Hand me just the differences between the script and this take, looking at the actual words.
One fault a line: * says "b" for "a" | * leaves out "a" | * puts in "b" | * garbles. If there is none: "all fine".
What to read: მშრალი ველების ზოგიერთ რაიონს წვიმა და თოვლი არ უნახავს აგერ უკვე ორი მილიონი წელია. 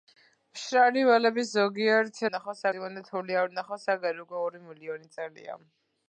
* says "უნახავს" for "რაიონს"